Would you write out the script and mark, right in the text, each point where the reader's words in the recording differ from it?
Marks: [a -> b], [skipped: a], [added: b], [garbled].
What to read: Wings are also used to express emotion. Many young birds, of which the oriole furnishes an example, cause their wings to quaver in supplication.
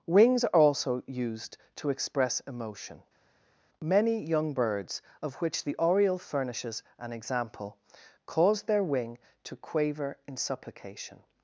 Wings are also used to express emotion. Many young birds, of which the oriole furnishes an example, cause their [wings -> wing] to quaver in supplication.